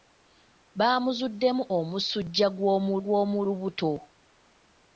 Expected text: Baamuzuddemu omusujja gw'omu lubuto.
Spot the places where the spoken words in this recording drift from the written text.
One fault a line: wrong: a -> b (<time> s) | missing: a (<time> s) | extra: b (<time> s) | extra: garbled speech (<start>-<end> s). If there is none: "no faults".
extra: gw'omu (3.0 s)